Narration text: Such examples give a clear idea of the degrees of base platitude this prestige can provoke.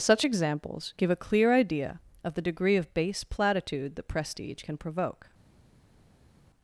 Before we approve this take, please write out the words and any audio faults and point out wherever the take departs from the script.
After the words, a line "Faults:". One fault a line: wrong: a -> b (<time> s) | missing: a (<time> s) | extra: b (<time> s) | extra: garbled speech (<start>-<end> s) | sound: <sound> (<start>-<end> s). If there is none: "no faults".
Such examples give a clear idea of the degree of base platitude that prestige can provoke.
Faults:
wrong: degrees -> degree (2.4 s)
wrong: this -> that (3.9 s)